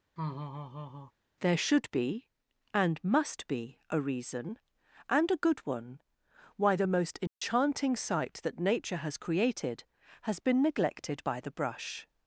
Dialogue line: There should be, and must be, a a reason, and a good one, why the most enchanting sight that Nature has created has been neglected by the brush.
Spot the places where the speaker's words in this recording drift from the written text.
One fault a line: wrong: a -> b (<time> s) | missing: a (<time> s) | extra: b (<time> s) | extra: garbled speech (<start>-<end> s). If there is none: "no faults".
missing: a (4.0 s)